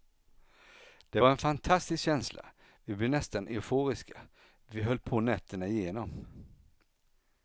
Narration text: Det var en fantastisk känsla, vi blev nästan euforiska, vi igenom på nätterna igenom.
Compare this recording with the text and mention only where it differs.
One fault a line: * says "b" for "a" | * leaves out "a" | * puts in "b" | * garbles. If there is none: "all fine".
* says "höll" for "igenom"